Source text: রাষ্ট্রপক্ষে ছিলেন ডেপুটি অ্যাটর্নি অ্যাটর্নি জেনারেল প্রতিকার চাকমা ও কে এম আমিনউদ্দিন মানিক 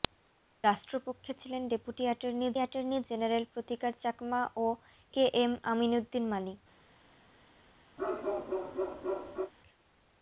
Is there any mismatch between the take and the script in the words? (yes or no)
no